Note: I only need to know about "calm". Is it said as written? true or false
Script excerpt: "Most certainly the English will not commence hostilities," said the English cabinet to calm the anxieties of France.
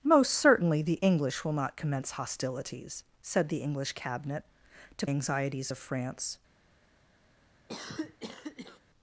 false